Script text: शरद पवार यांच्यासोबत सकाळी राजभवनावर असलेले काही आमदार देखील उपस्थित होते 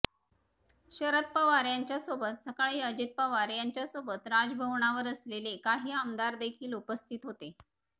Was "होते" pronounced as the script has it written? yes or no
yes